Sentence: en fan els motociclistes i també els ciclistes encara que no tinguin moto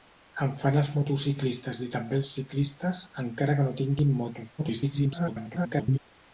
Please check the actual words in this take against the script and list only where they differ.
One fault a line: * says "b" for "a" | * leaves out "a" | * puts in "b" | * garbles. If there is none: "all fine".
* garbles